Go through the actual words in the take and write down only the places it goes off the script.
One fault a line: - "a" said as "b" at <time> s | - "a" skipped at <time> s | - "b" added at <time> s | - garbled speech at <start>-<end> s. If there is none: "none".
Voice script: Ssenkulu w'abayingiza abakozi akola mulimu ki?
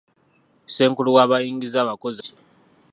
- "akola mulimu" skipped at 2.2 s